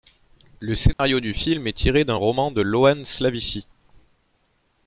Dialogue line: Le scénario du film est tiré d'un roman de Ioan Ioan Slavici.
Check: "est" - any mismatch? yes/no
no